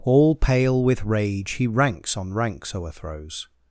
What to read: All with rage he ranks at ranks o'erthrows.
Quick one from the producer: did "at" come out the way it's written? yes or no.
no